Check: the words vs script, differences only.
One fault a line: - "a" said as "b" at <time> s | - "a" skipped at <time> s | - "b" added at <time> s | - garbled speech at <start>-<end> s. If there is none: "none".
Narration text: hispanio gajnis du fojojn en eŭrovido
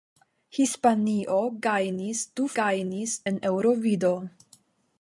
- "fojojn" said as "gajnis" at 2.6 s